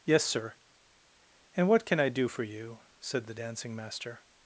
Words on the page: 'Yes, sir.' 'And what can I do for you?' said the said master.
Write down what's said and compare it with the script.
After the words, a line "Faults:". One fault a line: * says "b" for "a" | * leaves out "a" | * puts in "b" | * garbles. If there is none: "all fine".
'Yes, sir.' 'And what can I do for you?' said the dancing master.
Faults:
* says "dancing" for "said"